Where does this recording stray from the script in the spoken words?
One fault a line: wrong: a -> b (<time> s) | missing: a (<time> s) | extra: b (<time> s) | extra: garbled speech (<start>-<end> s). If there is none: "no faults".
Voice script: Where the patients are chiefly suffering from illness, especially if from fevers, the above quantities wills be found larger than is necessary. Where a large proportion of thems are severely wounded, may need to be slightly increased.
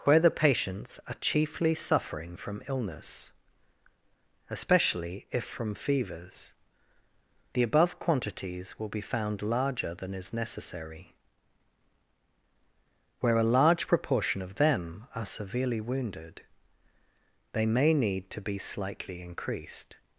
wrong: wills -> will (8.8 s)
wrong: thems -> them (14.6 s)
extra: they (17.5 s)